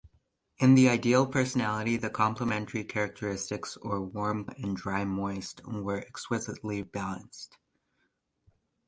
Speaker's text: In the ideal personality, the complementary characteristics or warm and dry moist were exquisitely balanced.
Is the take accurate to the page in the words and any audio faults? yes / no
yes